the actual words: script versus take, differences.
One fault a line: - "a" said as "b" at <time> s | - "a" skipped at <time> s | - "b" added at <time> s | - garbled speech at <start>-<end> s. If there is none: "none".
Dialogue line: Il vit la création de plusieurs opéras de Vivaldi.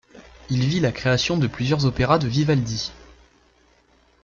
none